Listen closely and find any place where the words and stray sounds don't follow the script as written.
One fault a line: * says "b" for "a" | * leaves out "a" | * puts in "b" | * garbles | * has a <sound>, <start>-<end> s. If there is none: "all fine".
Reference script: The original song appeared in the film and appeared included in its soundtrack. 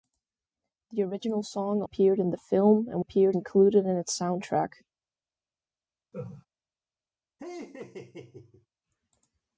* has a laugh, 6.1-6.5 s
* has a laugh, 7.4-8.7 s